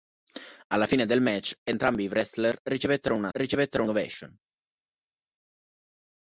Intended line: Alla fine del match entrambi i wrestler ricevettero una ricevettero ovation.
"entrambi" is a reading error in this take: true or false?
false